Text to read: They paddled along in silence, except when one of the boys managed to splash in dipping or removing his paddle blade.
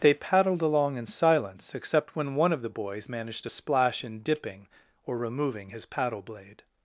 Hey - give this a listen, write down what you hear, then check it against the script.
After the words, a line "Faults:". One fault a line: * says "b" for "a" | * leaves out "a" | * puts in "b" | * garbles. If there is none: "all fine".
They paddled along in silence, except when one of the boys managed to splash in dipping or removing his paddle blade.
Faults:
all fine